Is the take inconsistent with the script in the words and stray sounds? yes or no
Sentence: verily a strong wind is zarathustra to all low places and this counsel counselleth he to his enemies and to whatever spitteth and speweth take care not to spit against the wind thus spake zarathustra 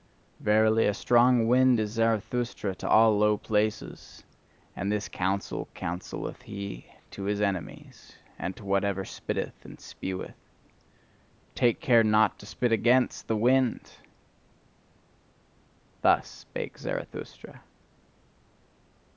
no